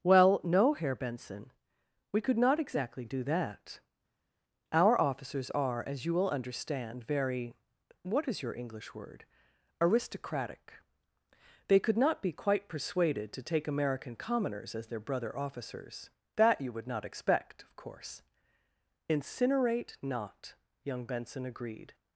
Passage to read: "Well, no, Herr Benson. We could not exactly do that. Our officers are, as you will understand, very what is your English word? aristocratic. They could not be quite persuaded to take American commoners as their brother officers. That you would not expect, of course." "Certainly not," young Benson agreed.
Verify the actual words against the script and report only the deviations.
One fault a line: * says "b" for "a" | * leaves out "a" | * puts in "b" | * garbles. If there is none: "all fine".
* says "Incinerate" for "Certainly"